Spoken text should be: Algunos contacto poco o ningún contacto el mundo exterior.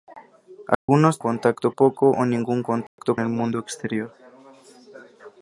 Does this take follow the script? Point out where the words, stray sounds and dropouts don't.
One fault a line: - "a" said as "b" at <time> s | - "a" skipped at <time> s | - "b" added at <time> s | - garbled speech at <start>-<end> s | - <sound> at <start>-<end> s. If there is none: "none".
- dropout at 0.7-0.9 s
- dropout at 2.9-3.0 s